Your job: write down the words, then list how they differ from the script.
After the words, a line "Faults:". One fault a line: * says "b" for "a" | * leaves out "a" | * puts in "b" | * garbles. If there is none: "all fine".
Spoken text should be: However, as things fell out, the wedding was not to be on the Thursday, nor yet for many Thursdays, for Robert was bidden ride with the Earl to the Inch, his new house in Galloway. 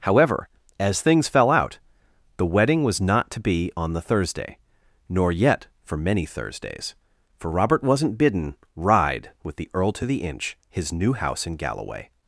However, as things fell out, the wedding was not to be on the Thursday, nor yet for many Thursdays, for Robert wasn't bidden ride with the Earl to the Inch, his new house in Galloway.
Faults:
* says "wasn't" for "was"